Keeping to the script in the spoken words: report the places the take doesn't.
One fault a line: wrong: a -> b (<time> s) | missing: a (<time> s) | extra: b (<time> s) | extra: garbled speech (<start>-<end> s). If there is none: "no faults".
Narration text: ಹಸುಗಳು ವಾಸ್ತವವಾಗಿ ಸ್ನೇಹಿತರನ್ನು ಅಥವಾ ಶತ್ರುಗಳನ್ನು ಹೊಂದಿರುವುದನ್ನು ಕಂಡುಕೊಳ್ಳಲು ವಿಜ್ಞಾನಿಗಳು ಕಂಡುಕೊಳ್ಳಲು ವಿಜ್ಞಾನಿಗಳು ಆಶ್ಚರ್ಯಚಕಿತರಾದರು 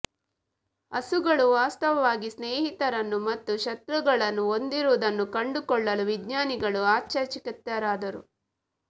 wrong: ಅಥವಾ -> ಮತ್ತು (3.3 s)
missing: ಕಂಡುಕೊಳ್ಳಲು ವಿಜ್ಞಾನಿಗಳು (6.8 s)